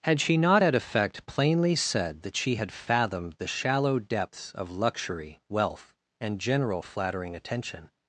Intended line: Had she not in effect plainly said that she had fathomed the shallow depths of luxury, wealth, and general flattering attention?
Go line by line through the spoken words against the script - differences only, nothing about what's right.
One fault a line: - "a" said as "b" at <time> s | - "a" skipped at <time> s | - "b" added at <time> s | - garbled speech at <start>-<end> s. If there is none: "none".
- "in" said as "at" at 0.6 s